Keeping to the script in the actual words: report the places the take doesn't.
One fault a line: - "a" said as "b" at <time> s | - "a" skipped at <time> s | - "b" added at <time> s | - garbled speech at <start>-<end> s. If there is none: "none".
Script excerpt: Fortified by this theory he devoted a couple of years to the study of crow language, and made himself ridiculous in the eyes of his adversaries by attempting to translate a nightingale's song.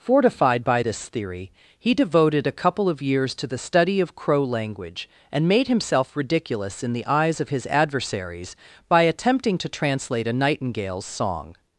none